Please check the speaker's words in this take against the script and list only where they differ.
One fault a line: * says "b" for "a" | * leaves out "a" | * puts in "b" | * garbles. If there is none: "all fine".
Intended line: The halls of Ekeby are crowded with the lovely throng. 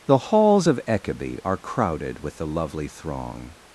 all fine